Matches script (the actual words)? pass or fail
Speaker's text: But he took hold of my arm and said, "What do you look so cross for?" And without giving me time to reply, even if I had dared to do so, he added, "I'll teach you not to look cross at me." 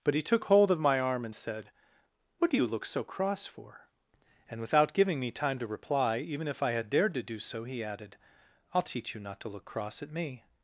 pass